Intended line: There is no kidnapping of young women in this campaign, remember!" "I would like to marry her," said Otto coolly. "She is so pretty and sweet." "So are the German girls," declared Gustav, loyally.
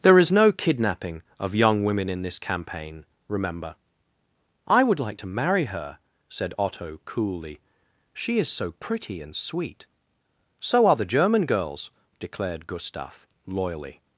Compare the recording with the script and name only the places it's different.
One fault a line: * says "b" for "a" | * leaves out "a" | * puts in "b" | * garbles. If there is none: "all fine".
all fine